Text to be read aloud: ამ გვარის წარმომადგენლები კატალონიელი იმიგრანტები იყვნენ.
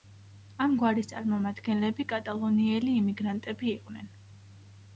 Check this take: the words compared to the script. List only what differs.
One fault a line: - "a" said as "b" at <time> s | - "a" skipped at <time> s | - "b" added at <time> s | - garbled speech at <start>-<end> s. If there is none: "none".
none